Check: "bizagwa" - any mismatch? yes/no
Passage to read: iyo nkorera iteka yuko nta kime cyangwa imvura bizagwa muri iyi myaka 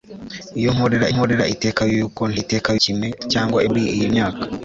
yes